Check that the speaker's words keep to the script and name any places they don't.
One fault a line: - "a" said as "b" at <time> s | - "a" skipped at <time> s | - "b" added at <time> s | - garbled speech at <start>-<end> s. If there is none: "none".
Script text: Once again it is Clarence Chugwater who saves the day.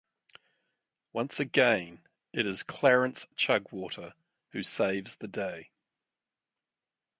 none